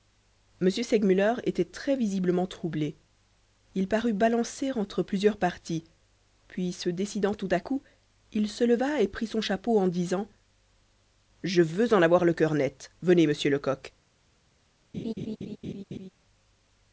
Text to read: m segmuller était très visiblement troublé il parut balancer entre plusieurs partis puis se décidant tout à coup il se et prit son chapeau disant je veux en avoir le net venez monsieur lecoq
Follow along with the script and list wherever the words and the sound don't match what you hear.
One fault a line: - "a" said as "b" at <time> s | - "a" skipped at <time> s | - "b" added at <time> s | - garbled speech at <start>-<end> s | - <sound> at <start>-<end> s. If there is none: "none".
- "leva" added at 8.6 s
- "en" added at 9.8 s
- "cœur" added at 12.3 s
- laugh at 14.9-16.1 s